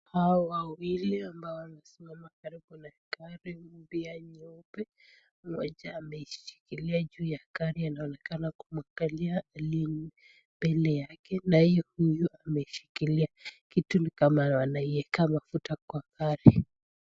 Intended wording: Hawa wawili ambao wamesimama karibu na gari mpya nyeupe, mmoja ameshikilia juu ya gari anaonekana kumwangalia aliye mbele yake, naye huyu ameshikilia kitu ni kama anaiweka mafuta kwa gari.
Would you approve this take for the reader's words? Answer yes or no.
yes